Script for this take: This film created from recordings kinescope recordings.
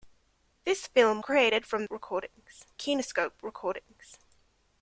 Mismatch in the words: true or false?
false